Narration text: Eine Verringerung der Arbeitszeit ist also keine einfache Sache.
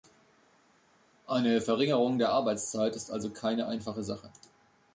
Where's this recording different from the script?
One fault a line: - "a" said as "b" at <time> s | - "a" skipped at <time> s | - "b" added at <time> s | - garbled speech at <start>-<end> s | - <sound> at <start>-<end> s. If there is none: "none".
none